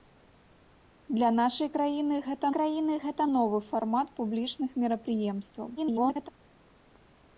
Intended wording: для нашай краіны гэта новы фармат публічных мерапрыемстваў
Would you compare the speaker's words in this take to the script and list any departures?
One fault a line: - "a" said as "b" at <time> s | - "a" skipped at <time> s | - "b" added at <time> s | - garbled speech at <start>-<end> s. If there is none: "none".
- "краіны гэта" added at 2.6 s
- garbled speech at 5.8-6.3 s